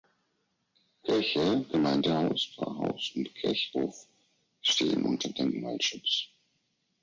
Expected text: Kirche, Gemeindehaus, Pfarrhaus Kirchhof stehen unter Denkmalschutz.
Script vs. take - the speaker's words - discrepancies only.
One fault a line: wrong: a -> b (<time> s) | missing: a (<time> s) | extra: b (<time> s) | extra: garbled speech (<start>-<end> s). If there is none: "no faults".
extra: und (3.2 s)